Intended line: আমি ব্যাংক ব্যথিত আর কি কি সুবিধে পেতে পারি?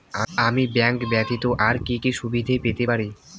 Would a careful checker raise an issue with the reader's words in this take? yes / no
no